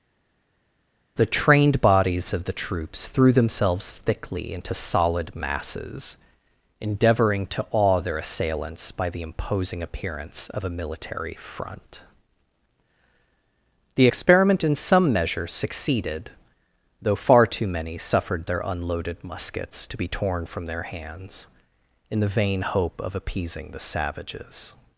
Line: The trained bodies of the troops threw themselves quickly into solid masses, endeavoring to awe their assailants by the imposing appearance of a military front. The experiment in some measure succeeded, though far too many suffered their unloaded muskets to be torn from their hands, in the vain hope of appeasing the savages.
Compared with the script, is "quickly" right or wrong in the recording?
wrong